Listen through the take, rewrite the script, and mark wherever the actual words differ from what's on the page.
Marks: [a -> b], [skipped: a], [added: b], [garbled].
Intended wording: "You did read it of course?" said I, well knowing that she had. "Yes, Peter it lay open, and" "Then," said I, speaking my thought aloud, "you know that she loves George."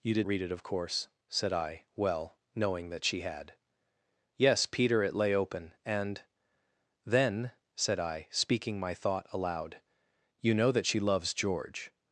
"You did read it of course?" said I, well knowing that she had. "Yes, Peter it lay open, and" "Then," said I, speaking my thought aloud, "you know that she loves George."